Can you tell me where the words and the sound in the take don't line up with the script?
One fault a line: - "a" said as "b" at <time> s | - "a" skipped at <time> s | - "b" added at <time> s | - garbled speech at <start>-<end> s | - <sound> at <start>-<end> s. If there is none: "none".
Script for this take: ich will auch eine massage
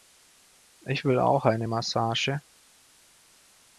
none